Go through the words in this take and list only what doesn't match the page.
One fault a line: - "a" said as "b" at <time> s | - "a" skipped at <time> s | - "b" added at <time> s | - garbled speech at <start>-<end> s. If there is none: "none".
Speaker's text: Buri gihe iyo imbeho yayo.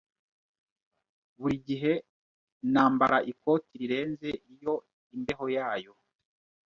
- "nambara ikoti rirenze" added at 2.7 s